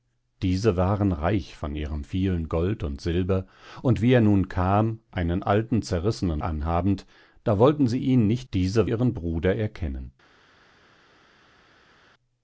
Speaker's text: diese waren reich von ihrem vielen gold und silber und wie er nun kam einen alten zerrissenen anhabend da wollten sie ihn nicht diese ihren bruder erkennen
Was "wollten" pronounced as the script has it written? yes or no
yes